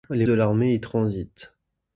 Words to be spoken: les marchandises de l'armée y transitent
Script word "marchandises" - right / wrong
wrong